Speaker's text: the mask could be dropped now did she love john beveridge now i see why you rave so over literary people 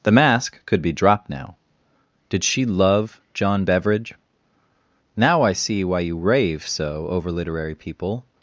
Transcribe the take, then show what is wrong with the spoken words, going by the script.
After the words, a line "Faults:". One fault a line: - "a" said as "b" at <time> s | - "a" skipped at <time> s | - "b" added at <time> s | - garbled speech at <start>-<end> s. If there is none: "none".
the mask could be dropped now did she love john beveridge now i see why you rave so over literary people
Faults:
none